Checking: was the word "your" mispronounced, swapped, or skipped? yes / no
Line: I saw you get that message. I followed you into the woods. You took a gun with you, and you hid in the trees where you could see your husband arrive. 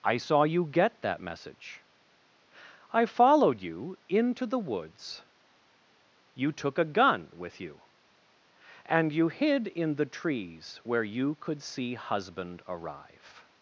yes